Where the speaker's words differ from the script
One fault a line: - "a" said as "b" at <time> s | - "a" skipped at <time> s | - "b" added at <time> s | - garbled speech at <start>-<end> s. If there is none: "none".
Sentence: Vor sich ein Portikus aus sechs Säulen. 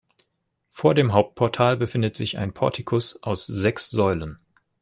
- "dem Hauptportal befindet" added at 0.9 s